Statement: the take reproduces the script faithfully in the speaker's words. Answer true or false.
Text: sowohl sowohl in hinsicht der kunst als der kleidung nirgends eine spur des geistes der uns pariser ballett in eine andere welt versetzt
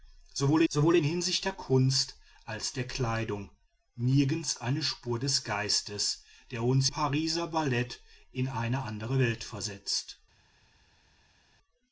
true